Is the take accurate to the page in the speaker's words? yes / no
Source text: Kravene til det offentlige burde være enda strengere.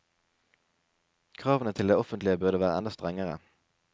yes